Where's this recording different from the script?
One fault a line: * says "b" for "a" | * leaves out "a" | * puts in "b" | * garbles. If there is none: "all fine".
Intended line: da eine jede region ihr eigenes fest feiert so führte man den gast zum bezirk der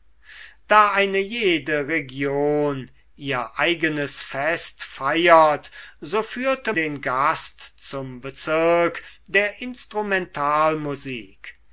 * leaves out "man"